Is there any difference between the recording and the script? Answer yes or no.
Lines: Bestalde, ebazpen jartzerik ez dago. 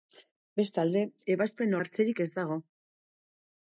no